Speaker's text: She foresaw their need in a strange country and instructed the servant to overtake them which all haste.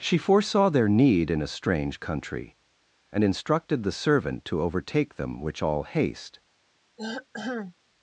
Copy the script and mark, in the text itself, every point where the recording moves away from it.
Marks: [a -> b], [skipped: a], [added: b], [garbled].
She foresaw their need in a strange country and instructed the servant to overtake them which all haste.